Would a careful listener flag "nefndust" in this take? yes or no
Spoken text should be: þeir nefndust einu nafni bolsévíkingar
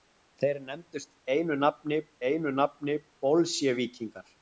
no